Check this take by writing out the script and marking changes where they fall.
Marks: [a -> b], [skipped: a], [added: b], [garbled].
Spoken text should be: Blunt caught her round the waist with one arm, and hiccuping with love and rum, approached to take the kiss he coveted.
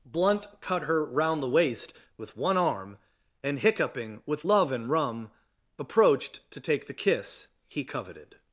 Blunt [caught -> cut] her round the waist with one arm, and hiccuping with love and rum, approached to take the kiss he coveted.